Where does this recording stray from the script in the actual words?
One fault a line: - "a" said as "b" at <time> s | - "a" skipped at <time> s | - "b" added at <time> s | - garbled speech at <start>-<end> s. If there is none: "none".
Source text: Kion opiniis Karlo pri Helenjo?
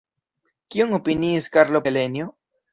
- "pri" skipped at 1.9 s